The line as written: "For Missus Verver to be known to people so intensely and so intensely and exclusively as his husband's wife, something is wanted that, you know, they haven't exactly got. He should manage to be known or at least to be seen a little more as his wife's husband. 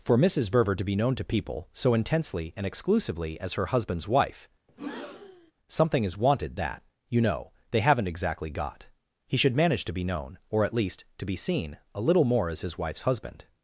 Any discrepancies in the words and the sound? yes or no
yes